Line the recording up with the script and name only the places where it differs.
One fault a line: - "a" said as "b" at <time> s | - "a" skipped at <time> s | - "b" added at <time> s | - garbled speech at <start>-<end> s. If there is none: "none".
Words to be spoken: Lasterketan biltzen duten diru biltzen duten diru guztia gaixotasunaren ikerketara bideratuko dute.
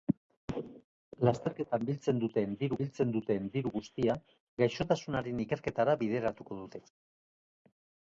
none